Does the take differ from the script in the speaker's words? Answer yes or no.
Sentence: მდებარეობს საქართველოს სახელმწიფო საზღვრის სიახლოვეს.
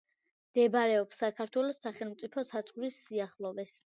no